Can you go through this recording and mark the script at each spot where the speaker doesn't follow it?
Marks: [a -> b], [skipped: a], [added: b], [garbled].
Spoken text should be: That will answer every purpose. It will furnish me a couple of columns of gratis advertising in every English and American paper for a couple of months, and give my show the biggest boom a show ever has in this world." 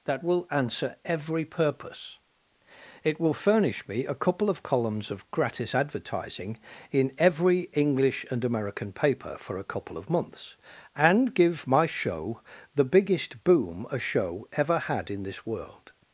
That will answer every purpose. It will furnish me a couple of columns of gratis advertising in every English and American paper for a couple of months, and give my show the biggest boom a show ever [has -> had] in this world."